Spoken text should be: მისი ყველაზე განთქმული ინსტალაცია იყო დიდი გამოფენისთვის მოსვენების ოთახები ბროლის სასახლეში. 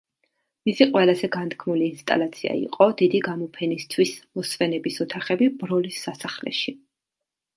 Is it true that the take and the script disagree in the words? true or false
false